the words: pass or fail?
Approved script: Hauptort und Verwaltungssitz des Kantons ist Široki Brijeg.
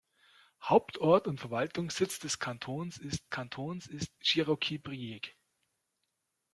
fail